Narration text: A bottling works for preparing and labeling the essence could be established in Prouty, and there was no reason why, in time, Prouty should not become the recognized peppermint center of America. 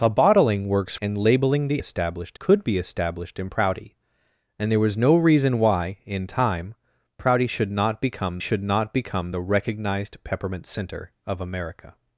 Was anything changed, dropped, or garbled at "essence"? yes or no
yes